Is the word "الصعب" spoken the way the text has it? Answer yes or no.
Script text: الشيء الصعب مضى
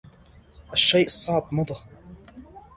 yes